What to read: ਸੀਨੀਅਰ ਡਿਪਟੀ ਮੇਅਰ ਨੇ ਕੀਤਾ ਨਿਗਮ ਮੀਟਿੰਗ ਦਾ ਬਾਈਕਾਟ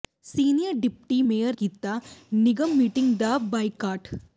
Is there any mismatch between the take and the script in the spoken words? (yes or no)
yes